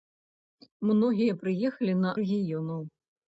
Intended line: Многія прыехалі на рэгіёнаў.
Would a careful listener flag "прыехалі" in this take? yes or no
no